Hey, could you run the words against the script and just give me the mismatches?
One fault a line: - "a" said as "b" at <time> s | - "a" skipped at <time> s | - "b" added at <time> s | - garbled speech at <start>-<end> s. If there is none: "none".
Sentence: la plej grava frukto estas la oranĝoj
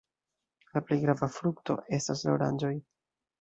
none